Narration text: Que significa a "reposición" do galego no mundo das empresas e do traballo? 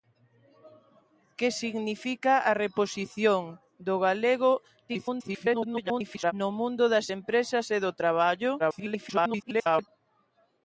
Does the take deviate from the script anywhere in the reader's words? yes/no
yes